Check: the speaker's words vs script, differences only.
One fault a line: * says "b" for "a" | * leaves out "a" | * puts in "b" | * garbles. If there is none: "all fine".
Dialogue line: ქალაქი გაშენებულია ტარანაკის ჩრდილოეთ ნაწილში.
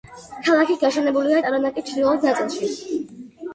all fine